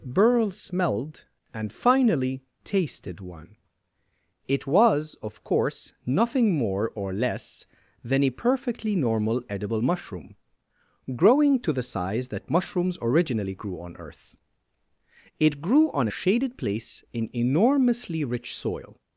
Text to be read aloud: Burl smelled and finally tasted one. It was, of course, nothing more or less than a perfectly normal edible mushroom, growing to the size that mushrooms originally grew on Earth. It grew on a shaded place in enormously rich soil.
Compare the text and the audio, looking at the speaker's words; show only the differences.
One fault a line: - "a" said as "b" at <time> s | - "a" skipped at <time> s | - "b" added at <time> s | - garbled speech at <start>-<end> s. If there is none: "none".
none